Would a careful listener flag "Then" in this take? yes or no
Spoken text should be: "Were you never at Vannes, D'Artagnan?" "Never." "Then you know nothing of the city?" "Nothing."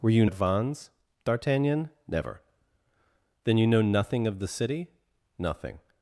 no